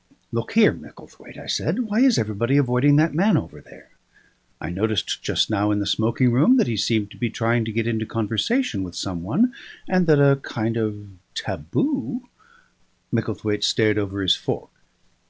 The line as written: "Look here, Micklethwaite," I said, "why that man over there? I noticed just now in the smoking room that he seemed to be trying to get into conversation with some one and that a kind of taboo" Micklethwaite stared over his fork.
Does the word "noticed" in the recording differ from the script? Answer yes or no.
no